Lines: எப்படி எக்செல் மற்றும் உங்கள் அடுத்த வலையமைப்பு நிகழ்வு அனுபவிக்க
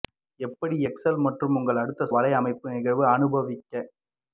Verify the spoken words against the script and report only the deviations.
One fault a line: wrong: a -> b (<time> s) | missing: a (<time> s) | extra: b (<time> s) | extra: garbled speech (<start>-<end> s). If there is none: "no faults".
no faults